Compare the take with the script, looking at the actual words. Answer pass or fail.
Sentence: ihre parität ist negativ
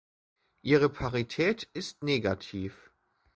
pass